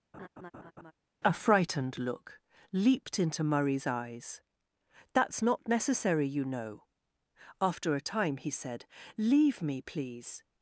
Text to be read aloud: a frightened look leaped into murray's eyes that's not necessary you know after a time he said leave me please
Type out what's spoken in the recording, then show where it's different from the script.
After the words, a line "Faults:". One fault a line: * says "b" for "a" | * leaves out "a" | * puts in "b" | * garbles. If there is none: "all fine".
a frightened look leaped into murray's eyes that's not necessary you know after a time he said leave me please
Faults:
all fine